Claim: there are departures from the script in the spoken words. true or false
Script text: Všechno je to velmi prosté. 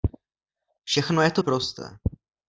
true